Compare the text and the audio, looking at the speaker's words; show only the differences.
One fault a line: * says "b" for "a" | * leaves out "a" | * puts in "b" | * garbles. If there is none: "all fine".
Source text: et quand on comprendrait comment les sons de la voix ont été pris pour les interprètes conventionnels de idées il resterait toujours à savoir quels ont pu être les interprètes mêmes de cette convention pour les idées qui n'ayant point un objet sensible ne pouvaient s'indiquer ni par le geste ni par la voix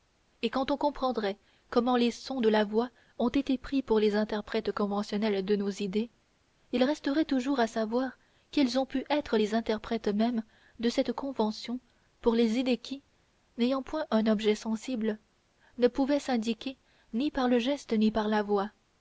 * puts in "nos"